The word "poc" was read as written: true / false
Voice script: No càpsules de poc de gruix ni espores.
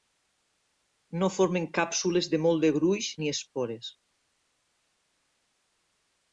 false